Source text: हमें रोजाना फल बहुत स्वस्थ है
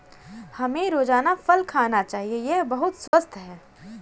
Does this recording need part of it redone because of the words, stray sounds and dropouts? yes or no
yes